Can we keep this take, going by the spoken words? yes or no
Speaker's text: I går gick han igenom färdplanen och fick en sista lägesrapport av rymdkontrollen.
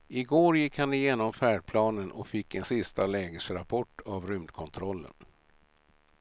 yes